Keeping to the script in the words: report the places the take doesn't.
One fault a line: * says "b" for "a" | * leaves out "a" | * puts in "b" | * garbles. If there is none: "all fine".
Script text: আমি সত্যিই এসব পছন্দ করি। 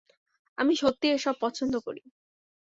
all fine